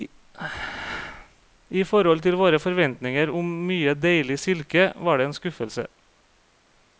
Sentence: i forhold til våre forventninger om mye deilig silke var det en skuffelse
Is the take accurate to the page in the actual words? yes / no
yes